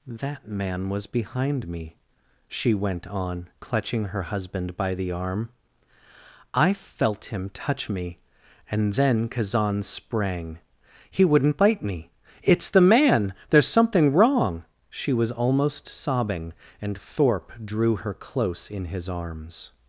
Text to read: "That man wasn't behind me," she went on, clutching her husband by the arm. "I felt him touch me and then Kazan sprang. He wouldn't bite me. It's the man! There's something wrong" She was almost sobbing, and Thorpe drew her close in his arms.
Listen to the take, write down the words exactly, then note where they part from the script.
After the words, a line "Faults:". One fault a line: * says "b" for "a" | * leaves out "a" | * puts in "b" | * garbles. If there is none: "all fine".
"That man was behind me," she went on, clutching her husband by the arm. "I felt him touch me and then Kazan sprang. He wouldn't bite me. It's the man! There's something wrong" She was almost sobbing, and Thorpe drew her close in his arms.
Faults:
* says "was" for "wasn't"